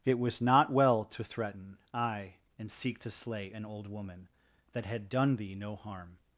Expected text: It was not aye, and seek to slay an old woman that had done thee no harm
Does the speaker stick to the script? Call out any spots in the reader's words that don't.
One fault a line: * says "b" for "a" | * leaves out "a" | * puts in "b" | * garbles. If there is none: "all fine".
* puts in "well to threaten"